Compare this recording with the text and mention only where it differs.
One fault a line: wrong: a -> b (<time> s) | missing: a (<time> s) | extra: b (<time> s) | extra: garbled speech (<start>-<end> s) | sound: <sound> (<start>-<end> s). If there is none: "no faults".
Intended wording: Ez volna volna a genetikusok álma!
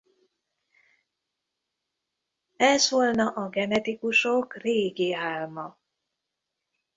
missing: volna (3.3 s)
extra: régi (4.6 s)